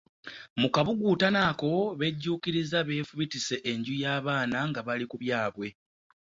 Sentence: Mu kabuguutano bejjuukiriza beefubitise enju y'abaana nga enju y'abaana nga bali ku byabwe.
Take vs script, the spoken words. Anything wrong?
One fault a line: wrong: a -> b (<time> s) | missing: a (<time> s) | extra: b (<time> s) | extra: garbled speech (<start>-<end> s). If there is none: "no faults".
extra: ako (1.5 s)
missing: enju y'abaana nga (4.8 s)